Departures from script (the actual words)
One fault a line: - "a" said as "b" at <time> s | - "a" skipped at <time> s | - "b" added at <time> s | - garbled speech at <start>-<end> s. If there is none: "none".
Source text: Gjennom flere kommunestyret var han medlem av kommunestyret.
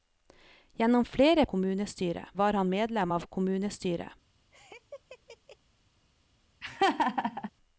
none